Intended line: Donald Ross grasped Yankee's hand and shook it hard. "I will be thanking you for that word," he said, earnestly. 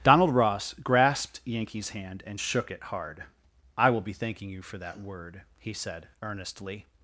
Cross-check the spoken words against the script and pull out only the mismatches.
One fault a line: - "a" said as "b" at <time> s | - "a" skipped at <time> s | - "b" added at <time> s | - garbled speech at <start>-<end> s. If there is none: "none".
none